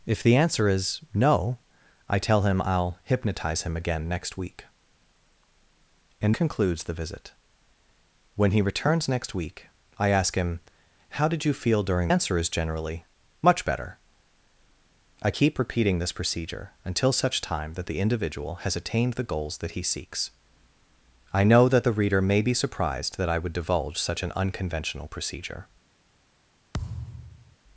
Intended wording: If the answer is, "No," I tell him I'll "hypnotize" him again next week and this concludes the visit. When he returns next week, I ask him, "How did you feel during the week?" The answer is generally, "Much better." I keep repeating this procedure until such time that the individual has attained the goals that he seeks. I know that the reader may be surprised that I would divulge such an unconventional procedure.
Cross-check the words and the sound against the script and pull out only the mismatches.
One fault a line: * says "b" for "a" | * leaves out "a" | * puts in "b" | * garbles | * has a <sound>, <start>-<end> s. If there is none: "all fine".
* leaves out "this"
* leaves out "the week The"
* has a thud, 26.7-27.6 s